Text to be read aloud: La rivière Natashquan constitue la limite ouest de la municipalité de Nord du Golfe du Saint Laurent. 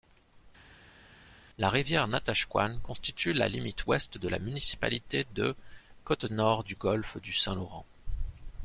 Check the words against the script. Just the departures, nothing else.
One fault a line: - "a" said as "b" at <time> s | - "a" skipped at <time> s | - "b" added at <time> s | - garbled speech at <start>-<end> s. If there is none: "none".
- "Côte" added at 6.0 s